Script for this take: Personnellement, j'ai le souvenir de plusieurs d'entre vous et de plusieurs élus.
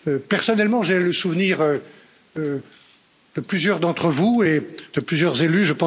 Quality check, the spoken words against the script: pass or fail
pass